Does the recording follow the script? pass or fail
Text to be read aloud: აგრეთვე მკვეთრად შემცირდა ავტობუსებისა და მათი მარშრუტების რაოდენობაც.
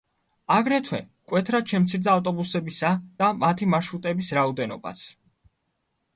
pass